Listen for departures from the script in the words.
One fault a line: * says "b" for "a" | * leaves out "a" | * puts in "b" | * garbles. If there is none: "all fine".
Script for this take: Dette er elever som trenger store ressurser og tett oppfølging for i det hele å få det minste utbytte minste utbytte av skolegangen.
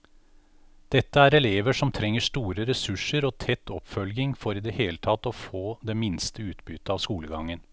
* puts in "tatt"
* leaves out "minste utbytte"